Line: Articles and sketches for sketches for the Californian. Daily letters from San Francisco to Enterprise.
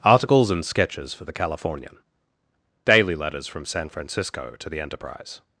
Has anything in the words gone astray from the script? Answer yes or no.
yes